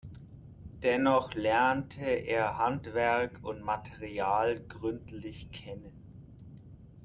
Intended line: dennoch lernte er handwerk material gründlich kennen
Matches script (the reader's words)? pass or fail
fail